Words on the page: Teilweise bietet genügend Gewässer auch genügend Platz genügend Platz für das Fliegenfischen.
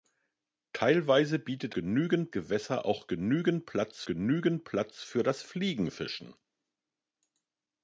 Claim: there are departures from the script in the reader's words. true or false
false